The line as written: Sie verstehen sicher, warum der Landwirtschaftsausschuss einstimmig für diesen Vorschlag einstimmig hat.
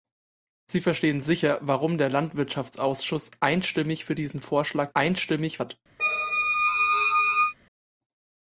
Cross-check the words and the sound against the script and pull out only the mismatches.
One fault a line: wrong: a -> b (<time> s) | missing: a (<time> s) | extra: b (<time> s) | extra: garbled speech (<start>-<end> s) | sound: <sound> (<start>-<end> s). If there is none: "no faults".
sound: squeak (6.0-7.5 s)